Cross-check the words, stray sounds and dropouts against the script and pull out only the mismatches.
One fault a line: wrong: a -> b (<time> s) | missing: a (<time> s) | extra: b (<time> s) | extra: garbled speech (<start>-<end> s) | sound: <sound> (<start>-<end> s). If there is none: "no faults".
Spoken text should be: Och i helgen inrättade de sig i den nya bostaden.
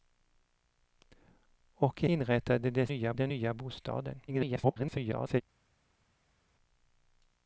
missing: helgen (2.1 s)
wrong: sig -> nya (2.9 s)
extra: garbled speech (4.3-5.4 s)